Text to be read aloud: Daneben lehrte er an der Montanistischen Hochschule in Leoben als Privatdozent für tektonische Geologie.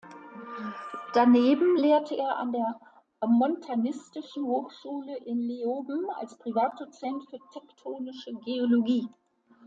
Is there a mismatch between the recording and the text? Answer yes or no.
no